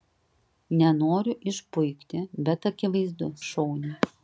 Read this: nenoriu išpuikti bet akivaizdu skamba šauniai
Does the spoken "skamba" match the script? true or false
false